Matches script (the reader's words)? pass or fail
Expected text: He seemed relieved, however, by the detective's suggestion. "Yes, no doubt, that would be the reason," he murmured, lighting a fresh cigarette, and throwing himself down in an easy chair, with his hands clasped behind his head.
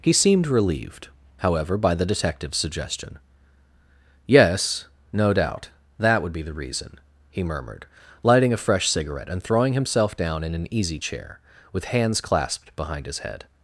fail